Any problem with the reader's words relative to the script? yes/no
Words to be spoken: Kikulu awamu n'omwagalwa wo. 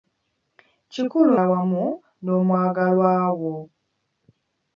no